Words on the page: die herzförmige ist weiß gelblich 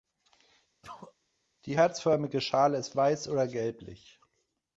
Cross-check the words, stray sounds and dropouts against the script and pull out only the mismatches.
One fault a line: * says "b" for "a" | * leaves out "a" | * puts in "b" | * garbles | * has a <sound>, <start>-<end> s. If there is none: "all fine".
* has a sneeze, 0.8-1.1 s
* puts in "schale"
* puts in "oder"